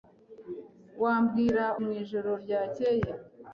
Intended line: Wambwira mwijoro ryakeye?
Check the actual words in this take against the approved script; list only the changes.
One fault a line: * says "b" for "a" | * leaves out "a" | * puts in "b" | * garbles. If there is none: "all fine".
all fine